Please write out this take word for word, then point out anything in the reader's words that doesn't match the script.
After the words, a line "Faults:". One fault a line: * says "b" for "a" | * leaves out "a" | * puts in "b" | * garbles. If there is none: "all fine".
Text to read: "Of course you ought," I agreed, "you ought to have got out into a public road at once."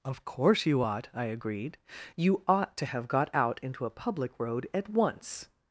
"Of course you ought," I agreed, "you ought to have got out into a public road at once."
Faults:
all fine